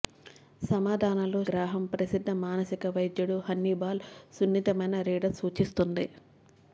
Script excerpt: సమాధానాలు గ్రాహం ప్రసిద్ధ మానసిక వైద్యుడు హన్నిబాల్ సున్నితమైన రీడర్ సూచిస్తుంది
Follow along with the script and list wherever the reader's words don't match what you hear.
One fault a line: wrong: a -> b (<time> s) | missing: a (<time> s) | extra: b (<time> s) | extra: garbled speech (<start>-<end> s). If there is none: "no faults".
no faults